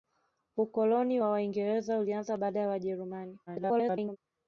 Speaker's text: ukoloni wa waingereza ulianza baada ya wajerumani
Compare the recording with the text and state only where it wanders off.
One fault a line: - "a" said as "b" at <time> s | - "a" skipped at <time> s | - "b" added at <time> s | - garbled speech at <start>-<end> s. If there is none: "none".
- garbled speech at 3.5-4.2 s